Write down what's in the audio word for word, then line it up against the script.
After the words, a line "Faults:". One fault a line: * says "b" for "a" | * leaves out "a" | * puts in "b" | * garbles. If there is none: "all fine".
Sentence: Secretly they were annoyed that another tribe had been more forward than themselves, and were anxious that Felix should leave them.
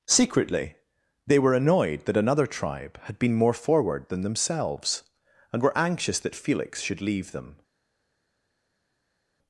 Secretly they were annoyed that another tribe had been more forward than themselves, and were anxious that Felix should leave them.
Faults:
all fine